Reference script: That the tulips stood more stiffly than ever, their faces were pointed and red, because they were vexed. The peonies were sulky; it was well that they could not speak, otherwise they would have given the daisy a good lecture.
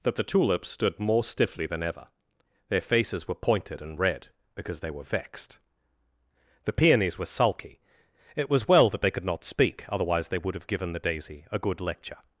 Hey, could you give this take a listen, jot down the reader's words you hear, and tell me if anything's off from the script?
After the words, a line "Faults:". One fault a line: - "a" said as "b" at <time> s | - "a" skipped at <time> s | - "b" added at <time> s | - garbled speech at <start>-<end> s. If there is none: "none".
That the tulips stood more stiffly than ever, their faces were pointed and red, because they were vexed. The peonies were sulky; it was well that they could not speak, otherwise they would have given the daisy a good lecture.
Faults:
none